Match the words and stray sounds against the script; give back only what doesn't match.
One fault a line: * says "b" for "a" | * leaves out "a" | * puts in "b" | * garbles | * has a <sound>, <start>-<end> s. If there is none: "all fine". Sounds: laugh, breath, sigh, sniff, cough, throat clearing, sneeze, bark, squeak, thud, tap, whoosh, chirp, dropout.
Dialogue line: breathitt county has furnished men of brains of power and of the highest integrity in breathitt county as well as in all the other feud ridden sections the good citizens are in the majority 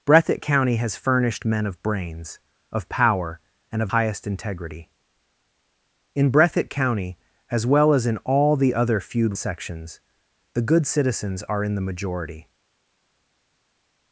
* leaves out "the"
* leaves out "ridden"